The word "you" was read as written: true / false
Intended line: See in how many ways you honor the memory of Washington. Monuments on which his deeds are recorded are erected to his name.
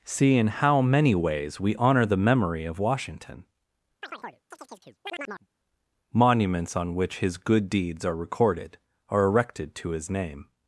false